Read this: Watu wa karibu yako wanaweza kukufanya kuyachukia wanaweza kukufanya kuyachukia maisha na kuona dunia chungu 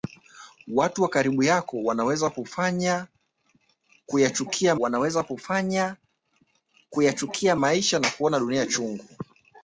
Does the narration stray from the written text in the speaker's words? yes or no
no